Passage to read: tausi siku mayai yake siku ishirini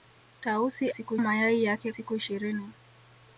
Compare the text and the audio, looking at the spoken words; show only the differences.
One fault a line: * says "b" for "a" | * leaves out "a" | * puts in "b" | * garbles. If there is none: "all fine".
all fine